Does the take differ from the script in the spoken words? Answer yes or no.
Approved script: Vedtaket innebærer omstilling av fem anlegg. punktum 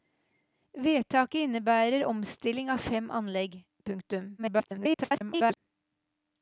yes